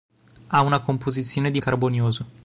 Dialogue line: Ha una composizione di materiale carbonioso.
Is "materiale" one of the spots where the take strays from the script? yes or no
yes